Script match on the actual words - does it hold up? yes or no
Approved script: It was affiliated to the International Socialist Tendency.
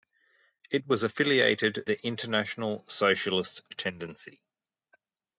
no